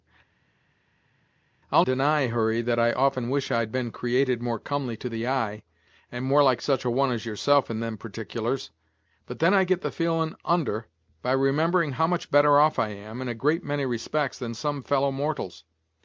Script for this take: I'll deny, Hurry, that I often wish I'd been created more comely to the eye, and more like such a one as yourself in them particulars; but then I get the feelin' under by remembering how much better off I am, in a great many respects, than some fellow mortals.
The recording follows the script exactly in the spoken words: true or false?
true